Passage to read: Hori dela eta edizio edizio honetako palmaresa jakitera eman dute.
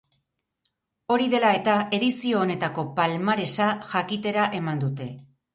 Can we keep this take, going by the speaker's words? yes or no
no